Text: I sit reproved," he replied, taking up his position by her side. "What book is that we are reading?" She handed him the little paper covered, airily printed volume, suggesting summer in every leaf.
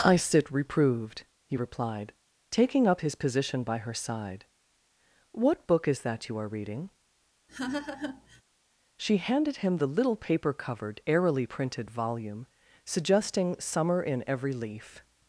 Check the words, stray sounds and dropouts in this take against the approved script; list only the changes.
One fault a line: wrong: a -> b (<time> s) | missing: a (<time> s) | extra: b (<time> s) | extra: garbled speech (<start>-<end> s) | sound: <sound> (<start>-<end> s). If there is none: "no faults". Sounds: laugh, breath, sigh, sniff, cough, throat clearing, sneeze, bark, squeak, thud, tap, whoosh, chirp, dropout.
wrong: we -> you (6.3 s)
sound: laugh (7.5-8.4 s)